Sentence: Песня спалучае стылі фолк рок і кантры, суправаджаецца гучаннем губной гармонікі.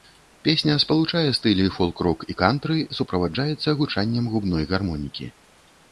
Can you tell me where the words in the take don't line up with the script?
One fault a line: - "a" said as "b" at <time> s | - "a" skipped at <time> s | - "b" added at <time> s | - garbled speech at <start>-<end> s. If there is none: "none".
none